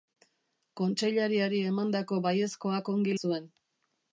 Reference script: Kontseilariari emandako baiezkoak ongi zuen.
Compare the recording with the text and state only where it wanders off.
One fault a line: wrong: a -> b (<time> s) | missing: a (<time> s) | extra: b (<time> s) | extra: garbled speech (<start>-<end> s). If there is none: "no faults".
no faults